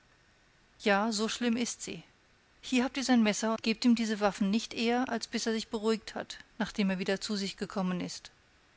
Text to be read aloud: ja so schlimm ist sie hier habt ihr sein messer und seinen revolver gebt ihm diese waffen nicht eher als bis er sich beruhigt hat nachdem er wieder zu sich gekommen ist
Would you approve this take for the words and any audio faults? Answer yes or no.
no